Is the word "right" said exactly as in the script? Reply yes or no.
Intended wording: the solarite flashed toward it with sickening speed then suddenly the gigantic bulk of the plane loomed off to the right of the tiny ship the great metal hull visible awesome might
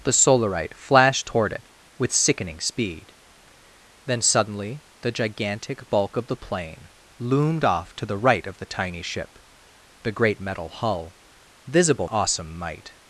yes